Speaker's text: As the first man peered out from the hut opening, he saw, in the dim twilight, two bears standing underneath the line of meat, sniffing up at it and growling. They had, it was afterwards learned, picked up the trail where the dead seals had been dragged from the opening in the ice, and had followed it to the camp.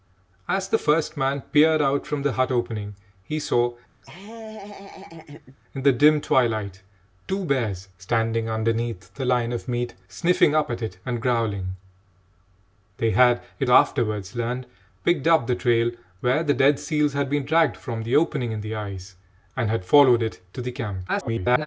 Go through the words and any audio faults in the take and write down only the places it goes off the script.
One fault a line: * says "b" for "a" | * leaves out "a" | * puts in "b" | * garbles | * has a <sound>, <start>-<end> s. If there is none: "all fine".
* has a laugh, 4.0-5.6 s
* leaves out "was"
* garbles